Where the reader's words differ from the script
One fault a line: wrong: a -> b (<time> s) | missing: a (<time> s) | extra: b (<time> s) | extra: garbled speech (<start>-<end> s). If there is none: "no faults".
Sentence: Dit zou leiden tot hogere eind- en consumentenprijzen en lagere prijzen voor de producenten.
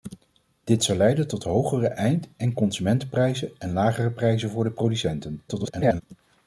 extra: garbled speech (5.5-6.0 s)